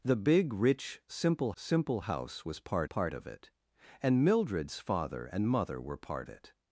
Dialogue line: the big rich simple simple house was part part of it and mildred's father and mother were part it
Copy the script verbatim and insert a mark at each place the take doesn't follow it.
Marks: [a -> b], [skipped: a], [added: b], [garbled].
the big rich simple simple house was part part of it and mildred's father and mother were part it